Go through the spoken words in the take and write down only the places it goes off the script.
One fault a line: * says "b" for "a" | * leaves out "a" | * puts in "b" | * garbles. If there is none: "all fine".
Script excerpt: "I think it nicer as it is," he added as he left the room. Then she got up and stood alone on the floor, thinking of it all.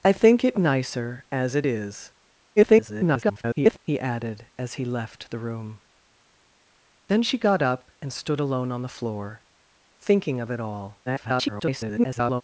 * garbles
* garbles